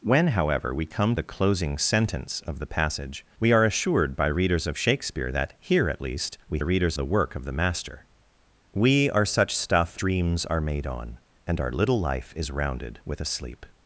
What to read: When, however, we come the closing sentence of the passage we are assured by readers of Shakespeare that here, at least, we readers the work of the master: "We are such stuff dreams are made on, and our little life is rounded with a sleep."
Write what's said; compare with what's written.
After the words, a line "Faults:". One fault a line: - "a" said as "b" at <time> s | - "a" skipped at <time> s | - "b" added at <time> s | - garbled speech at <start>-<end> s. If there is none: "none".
When, however, we come the closing sentence of the passage we are assured by readers of Shakespeare that here, at least, we readers the work of the master: "We are such stuff dreams are made on, and our little life is rounded with a sleep."
Faults:
none